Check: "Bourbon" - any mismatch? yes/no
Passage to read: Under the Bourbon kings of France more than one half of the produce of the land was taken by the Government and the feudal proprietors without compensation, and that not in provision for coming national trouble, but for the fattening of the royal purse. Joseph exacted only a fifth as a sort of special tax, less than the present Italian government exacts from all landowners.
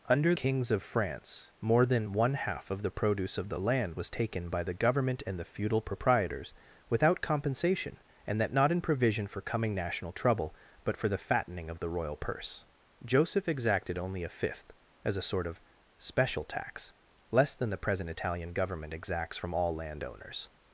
yes